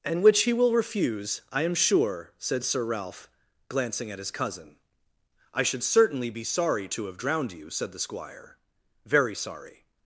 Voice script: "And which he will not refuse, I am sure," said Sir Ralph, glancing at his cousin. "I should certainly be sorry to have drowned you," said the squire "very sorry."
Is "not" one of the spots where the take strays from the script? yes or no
yes